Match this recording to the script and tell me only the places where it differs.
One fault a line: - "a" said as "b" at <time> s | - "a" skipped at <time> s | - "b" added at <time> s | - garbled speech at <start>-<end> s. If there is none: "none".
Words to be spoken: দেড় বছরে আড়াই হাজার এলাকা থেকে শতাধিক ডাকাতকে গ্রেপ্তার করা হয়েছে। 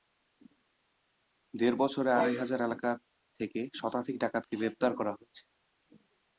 none